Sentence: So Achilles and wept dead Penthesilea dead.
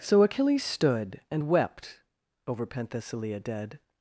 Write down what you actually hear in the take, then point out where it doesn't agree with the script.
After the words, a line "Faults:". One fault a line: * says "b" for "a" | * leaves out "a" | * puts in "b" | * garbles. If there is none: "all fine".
So Achilles stood and wept over Penthesilea dead.
Faults:
* puts in "stood"
* says "over" for "dead"